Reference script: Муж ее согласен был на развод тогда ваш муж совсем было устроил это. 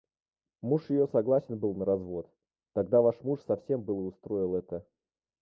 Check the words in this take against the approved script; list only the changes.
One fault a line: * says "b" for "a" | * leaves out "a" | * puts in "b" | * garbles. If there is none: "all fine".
all fine